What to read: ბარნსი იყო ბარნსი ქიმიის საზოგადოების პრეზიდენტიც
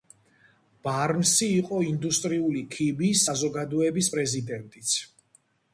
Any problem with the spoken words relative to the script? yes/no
yes